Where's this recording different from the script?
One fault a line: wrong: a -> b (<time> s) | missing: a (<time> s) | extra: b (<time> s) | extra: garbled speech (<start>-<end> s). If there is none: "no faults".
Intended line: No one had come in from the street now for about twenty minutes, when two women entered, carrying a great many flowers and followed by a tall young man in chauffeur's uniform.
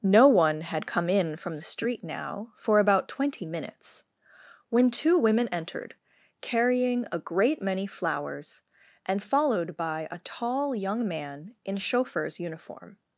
no faults